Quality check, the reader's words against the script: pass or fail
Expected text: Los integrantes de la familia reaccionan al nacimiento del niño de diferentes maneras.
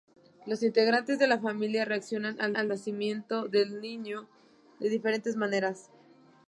fail